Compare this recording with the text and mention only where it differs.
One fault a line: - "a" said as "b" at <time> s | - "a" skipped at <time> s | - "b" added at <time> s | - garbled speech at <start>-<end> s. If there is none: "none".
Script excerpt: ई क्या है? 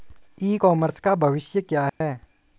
- "कॉमर्स का भविष्य" added at 0.5 s